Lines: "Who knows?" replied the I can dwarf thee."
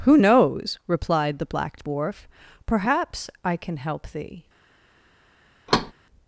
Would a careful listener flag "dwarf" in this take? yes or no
yes